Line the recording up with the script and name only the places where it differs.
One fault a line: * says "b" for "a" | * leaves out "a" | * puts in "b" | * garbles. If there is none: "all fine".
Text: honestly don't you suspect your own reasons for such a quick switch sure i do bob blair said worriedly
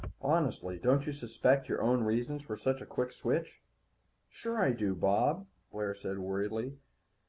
all fine